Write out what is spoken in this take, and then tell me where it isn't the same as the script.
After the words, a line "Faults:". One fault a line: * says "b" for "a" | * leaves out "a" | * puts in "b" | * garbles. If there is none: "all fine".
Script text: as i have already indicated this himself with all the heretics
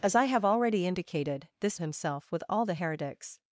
as i have already indicated this himself with all the heretics
Faults:
all fine